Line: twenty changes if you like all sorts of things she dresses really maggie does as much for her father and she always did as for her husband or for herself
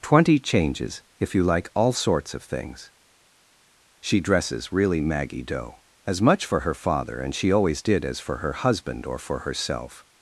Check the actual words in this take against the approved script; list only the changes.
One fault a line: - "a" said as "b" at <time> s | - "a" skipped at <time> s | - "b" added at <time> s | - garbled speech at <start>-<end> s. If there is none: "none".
- "does" said as "doe" at 5.4 s